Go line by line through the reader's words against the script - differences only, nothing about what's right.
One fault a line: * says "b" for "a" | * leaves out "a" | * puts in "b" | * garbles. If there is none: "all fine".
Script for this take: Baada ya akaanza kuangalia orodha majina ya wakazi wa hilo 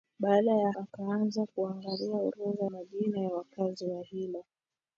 all fine